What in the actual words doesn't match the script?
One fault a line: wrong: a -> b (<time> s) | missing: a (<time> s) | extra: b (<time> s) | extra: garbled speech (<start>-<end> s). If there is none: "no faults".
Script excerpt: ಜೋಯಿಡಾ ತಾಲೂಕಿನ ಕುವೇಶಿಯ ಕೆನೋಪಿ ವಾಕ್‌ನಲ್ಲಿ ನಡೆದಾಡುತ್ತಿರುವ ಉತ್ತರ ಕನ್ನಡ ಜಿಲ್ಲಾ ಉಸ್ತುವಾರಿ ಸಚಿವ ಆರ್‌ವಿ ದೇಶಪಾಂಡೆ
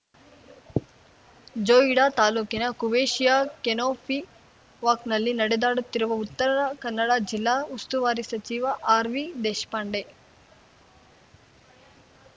no faults